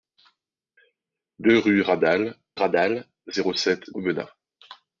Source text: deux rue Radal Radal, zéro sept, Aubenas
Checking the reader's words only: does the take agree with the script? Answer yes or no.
yes